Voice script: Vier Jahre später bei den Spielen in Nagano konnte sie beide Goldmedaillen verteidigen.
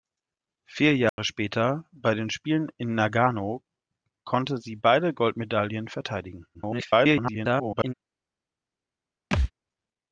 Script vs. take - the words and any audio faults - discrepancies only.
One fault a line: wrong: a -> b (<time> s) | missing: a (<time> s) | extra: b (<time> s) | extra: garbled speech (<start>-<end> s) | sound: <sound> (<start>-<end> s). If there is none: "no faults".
sound: dropout (1.1-1.2 s)
extra: garbled speech (6.5-7.9 s)
sound: thud (9.3-9.5 s)